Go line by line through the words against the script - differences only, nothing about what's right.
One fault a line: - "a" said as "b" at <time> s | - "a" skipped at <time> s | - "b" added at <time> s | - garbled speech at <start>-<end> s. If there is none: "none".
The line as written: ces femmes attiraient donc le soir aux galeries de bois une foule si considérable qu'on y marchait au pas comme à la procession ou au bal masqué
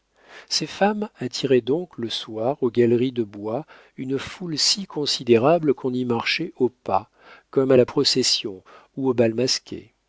none